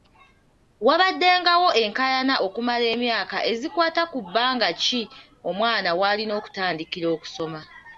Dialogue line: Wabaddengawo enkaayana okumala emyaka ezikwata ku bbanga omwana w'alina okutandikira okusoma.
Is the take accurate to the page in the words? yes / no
no